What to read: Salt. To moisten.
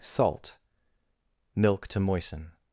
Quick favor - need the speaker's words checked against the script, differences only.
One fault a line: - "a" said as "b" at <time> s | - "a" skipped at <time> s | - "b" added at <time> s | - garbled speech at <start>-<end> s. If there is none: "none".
- "Milk" added at 1.6 s